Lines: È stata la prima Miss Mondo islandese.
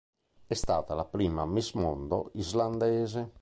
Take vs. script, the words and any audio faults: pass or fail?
pass